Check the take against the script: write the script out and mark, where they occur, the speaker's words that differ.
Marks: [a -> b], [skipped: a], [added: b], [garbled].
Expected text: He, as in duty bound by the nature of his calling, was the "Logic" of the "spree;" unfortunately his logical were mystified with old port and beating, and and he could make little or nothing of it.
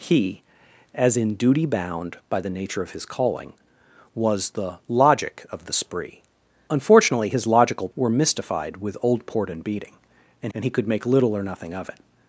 He, as in duty bound by the nature of his calling, was the "Logic" of the "spree;" unfortunately his logical were mystified with old port and beating, and and he could make little or nothing of it.